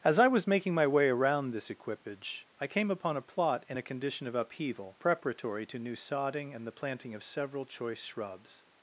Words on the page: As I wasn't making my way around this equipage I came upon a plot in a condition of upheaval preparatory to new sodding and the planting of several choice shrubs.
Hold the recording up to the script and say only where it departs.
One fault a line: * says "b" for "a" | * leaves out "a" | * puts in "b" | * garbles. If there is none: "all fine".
* says "was" for "wasn't"